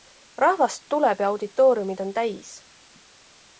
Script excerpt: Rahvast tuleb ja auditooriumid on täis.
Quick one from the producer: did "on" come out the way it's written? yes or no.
yes